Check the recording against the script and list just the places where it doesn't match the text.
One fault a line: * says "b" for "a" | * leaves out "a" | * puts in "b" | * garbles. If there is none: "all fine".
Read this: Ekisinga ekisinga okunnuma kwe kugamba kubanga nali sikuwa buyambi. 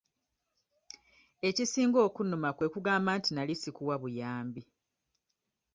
* leaves out "ekisinga"
* says "nti" for "kubanga"